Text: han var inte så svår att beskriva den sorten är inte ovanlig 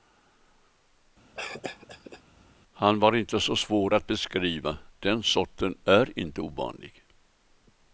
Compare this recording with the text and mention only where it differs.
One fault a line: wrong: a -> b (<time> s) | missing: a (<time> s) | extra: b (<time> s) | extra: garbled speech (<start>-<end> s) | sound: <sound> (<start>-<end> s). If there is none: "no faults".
sound: cough (1.3-2.2 s)